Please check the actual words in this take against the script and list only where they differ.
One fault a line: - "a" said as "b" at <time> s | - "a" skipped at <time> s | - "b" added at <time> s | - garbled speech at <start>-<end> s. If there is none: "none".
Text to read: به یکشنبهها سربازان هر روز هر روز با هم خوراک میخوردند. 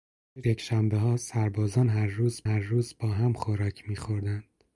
none